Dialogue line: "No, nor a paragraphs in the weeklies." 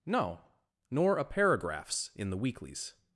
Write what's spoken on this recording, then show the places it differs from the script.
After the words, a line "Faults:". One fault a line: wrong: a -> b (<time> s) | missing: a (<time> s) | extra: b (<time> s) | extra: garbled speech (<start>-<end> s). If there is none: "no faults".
"No, nor a paragraphs in the weeklies."
Faults:
no faults